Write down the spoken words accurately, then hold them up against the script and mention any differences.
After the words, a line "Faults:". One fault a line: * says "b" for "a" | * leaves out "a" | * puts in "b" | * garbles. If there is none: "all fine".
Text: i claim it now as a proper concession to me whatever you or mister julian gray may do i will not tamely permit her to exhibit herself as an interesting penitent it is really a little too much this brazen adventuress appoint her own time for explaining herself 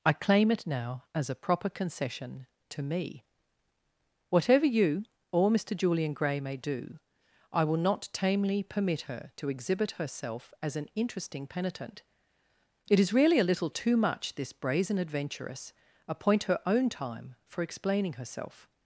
i claim it now as a proper concession to me whatever you or mister julian gray may do i will not tamely permit her to exhibit herself as an interesting penitent it is really a little too much this brazen adventuress appoint her own time for explaining herself
Faults:
all fine